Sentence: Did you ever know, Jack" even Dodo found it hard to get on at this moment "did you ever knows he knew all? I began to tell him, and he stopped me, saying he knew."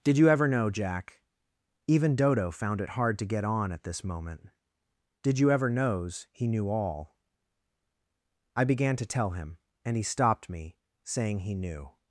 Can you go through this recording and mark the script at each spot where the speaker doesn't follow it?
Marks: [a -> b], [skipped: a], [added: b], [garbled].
Did you ever know, Jack" even Dodo found it hard to get on at this moment "did you ever knows he knew all? I began to tell him, and he stopped me, saying he knew."